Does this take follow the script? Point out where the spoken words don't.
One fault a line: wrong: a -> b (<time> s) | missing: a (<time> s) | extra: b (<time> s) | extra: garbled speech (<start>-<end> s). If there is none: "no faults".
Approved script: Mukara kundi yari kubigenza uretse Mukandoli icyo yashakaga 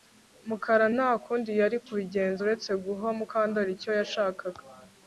extra: nta (0.9 s)
extra: guha (2.8 s)